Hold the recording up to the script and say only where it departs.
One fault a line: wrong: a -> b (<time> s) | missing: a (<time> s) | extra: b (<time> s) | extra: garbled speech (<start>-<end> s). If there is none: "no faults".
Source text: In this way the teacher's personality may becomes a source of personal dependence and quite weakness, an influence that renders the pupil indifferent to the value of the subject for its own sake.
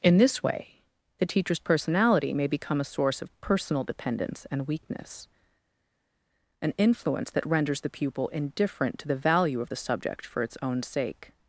wrong: becomes -> become (2.5 s)
missing: quite (4.7 s)